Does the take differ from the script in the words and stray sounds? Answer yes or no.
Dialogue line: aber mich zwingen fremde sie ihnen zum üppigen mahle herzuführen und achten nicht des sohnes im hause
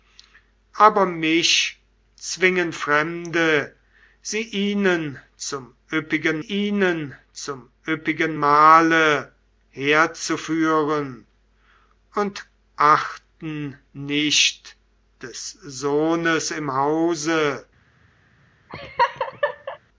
yes